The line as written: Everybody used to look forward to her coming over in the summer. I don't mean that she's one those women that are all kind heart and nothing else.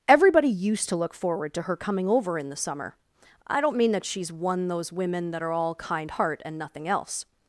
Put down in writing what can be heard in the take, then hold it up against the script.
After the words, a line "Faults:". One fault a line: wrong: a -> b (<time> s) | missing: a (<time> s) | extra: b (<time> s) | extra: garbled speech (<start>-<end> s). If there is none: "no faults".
Everybody used to look forward to her coming over in the summer. I don't mean that she's one those women that are all kind heart and nothing else.
Faults:
no faults